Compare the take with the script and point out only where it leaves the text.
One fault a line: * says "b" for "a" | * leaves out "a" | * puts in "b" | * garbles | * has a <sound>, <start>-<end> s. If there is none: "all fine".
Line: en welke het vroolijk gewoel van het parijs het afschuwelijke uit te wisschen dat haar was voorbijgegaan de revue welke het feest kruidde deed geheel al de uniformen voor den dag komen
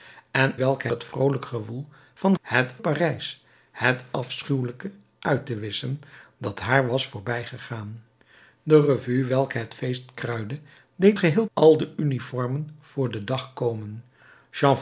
all fine